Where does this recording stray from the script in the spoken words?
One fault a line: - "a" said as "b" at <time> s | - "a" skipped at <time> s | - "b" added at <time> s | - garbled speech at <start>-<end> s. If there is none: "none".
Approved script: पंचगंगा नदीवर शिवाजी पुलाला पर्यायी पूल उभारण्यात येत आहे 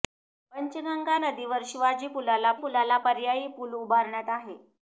- "पुलाला" added at 2.6 s
- "येत" skipped at 4.3 s